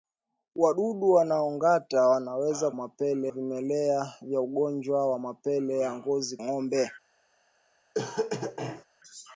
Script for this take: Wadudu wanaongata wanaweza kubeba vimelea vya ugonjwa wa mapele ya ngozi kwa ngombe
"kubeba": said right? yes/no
no